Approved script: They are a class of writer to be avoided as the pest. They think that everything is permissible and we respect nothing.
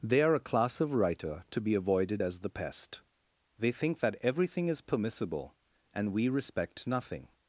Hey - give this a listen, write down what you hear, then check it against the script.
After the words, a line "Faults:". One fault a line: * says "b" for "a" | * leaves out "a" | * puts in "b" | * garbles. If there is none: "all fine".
They are a class of writer to be avoided as the pest. They think that everything is permissible and we respect nothing.
Faults:
all fine